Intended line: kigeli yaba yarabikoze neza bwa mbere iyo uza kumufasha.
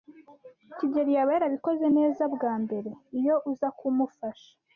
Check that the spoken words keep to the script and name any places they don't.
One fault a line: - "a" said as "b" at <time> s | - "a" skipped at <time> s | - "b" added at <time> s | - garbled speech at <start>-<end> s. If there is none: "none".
none